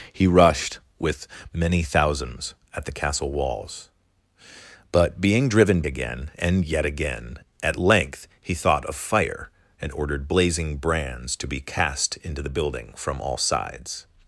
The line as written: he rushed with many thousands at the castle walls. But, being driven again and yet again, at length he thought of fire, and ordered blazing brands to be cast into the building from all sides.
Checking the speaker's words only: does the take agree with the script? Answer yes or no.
yes